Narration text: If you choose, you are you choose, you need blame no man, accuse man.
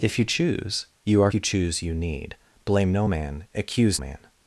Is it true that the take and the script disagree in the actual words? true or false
false